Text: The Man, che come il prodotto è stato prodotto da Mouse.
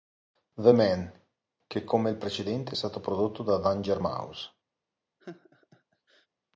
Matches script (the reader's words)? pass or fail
fail